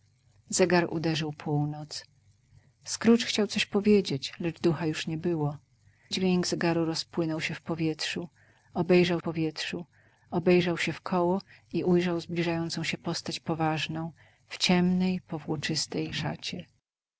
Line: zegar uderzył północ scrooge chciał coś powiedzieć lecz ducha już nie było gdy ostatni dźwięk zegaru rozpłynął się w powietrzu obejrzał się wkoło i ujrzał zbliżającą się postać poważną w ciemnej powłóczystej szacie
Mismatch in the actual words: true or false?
true